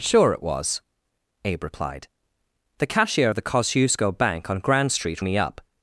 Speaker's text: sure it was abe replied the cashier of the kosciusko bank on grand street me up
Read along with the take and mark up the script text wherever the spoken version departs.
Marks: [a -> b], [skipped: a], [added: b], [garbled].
sure it was abe replied the cashier of the kosciusko bank on grand street me up